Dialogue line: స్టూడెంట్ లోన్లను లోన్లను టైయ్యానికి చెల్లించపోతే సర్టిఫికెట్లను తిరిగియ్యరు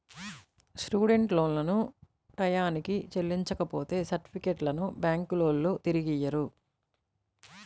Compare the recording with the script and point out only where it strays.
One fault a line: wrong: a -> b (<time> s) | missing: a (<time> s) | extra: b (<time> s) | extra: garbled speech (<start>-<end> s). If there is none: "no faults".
missing: లోన్లను (1.8 s)
extra: బ్యాంకులోల్లు (5.0 s)